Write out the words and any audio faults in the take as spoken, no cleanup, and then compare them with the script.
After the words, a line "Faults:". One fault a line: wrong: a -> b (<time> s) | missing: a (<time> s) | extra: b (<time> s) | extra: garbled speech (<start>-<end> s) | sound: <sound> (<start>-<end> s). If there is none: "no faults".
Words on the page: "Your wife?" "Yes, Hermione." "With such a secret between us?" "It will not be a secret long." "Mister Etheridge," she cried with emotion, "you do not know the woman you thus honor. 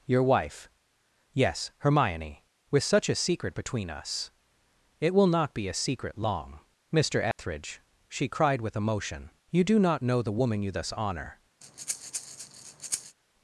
"Your wife?" "Yes, Hermione." "With such a secret between us?" "It will not be a secret long." "Mister Etheridge," she cried with emotion, "you do not know the woman you thus honor.
Faults:
sound: dropout (7.3-7.4 s)
sound: breath (11.6-13.2 s)